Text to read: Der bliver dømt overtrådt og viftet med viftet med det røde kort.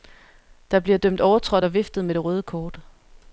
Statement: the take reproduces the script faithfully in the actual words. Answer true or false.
false